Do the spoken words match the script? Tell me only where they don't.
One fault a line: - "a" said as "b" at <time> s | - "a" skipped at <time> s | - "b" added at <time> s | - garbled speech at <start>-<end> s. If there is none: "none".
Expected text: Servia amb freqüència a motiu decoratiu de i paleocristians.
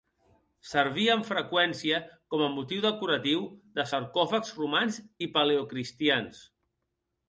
- "com" added at 2.3 s
- "sarcòfags romans" added at 3.9 s